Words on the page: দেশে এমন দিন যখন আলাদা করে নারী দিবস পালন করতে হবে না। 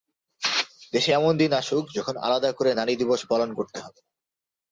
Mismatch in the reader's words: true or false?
true